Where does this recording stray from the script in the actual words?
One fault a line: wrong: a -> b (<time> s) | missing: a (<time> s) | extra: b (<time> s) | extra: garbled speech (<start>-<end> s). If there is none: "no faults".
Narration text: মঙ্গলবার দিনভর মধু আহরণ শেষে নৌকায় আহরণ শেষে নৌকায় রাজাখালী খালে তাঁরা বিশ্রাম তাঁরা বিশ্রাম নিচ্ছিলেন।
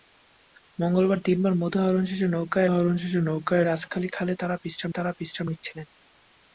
no faults